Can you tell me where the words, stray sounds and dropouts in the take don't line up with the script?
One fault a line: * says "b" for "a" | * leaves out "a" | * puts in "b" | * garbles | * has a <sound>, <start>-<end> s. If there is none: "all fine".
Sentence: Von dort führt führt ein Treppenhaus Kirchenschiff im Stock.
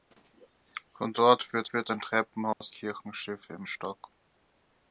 * has a dropout, 2.5-2.6 s